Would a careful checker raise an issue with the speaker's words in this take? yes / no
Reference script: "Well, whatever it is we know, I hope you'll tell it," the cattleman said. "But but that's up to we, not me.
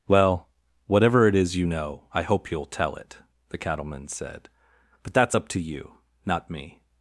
yes